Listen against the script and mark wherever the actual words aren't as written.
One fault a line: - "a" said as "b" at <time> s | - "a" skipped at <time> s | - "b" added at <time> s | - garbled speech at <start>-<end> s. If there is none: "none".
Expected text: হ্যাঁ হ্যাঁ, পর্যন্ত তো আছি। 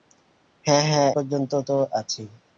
none